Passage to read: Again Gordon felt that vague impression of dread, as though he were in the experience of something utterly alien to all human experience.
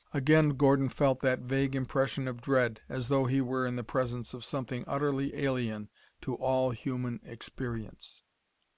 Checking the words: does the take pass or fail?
fail